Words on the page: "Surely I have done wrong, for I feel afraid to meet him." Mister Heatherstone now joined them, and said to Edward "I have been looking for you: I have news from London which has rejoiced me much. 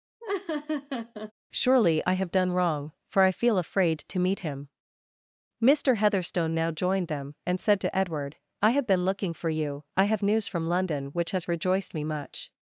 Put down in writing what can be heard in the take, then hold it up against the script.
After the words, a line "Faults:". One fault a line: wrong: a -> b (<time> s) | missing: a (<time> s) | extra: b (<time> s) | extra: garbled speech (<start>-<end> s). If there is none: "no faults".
"Surely I have done wrong, for I feel afraid to meet him." Mister Heatherstone now joined them, and said to Edward "I have been looking for you: I have news from London which has rejoiced me much.
Faults:
no faults